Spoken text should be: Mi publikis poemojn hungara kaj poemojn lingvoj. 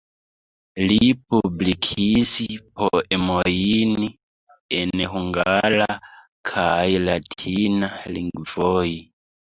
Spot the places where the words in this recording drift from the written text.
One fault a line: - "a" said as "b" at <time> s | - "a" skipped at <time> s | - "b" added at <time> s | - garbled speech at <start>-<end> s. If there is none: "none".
- "Mi" said as "Li" at 0.9 s
- "en" added at 4.8 s
- "poemojn" said as "latina" at 7.1 s